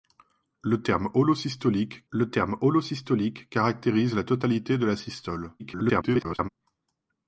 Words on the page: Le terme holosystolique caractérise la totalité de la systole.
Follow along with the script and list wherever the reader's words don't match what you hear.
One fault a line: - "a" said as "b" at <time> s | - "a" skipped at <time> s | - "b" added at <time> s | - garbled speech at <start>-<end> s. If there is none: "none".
- "le terme holosystolique" added at 2.1 s
- garbled speech at 5.6-6.5 s